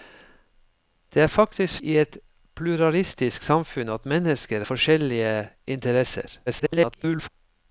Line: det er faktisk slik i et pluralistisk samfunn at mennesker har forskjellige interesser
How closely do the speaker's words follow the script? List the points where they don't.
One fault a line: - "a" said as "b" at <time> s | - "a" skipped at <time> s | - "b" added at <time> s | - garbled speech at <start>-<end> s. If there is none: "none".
- "slik" skipped at 1.8 s
- "har" skipped at 4.6 s
- garbled speech at 6.5-7.3 s